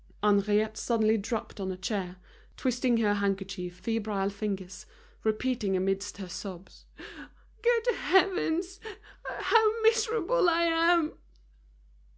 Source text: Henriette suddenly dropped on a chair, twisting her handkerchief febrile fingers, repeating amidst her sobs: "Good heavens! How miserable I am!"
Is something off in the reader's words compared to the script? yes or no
no